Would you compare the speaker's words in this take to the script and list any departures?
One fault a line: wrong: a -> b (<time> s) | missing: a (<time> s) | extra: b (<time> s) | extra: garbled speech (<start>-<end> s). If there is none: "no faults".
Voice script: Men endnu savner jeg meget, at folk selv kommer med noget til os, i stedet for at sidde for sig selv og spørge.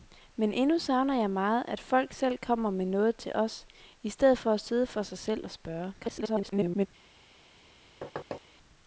extra: garbled speech (6.0-6.9 s)